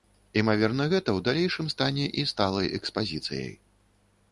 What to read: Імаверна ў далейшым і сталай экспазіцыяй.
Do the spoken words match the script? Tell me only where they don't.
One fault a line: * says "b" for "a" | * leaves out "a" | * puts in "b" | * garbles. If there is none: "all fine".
* puts in "гэта"
* puts in "стане"